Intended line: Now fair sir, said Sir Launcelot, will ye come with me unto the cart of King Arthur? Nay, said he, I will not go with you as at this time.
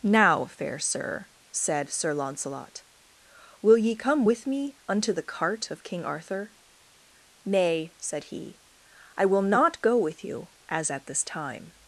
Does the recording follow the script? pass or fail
pass